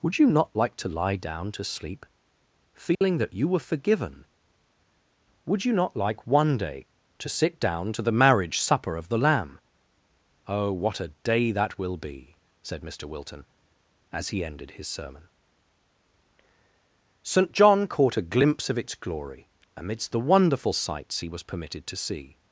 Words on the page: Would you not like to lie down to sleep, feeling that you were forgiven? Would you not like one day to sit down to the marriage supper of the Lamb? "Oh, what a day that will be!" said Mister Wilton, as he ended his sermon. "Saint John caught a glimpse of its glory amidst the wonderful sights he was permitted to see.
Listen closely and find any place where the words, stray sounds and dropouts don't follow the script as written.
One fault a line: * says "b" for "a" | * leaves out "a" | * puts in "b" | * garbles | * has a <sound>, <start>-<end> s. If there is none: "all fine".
* has a dropout, 2.9-3.0 s